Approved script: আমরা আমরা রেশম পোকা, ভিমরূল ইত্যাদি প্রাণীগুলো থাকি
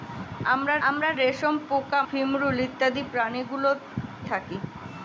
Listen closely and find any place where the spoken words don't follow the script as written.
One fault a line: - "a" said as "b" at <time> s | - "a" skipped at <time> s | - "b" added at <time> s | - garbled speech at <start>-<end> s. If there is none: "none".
none